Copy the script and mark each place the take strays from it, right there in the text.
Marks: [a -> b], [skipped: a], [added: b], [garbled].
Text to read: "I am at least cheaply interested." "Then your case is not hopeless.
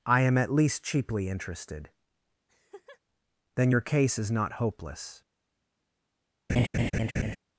"I am at least cheaply interested." "Then your case is not hopeless.